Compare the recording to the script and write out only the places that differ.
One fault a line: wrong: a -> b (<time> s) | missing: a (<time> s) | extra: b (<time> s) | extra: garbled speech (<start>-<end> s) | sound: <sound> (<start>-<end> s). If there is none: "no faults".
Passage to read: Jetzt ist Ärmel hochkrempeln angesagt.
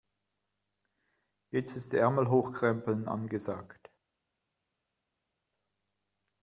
no faults